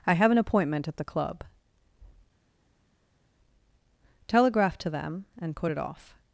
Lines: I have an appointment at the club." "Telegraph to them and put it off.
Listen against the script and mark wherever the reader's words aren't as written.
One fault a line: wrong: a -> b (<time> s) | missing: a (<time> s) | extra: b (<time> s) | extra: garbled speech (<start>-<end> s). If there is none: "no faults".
no faults